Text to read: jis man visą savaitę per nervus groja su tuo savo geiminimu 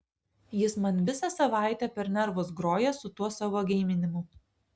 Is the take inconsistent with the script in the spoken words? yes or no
no